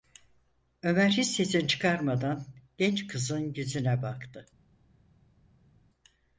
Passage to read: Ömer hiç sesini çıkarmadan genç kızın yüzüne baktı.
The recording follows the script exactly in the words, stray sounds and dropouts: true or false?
true